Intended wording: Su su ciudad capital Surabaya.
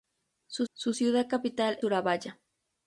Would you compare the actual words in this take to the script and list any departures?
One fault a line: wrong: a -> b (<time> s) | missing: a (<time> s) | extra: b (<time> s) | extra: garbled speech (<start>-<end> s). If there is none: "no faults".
no faults